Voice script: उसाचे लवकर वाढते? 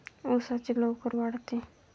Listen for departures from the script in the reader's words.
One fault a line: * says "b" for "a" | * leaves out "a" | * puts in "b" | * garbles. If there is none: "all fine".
all fine